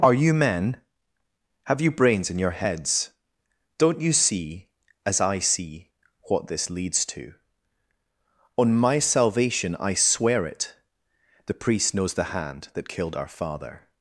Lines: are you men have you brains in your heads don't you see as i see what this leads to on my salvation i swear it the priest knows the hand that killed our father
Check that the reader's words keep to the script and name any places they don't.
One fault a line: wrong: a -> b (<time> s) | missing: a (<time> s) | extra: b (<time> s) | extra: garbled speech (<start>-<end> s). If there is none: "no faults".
no faults